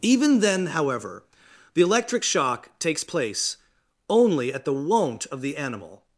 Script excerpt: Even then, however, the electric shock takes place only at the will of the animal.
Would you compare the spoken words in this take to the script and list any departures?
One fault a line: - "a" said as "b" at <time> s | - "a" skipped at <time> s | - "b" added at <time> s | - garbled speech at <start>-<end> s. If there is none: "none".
- "will" said as "won't" at 4.7 s